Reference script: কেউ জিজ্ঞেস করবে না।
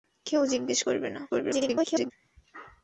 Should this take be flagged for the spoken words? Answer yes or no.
yes